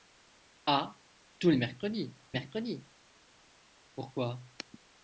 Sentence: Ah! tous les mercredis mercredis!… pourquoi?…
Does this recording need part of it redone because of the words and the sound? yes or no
no